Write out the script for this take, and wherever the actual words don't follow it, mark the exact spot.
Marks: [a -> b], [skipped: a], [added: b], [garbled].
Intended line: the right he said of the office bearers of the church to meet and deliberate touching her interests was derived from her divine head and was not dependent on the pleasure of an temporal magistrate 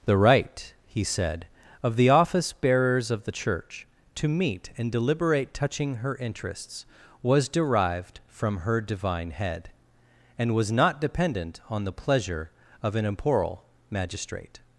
the right he said of the office bearers of the church to meet and deliberate touching her interests was derived from her divine head and was not dependent on the pleasure of an temporal magistrate